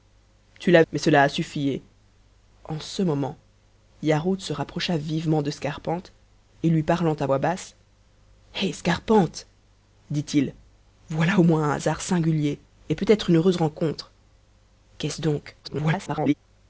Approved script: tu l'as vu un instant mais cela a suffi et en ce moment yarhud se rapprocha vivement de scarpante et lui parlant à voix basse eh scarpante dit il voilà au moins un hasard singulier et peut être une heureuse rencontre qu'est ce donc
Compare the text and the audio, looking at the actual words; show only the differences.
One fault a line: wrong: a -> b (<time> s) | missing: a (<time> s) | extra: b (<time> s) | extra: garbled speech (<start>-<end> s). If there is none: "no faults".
missing: vu un instant (0.8 s)
extra: garbled speech (15.6-16.3 s)